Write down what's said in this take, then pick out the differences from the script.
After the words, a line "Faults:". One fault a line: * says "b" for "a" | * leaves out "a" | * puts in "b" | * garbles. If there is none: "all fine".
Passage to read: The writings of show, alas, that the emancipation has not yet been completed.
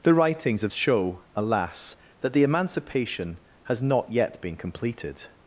The writings of show, alas, that the emancipation has not yet been completed.
Faults:
all fine